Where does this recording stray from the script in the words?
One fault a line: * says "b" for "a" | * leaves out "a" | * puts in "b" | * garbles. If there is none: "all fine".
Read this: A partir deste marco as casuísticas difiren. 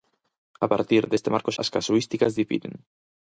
all fine